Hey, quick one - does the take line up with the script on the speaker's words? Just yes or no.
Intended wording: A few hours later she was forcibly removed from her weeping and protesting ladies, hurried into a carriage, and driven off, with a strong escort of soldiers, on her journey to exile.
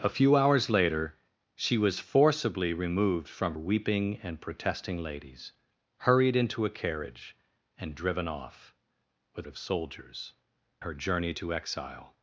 no